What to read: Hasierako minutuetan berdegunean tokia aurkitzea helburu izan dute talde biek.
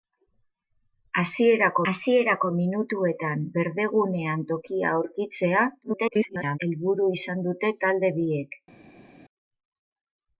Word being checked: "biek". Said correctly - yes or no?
yes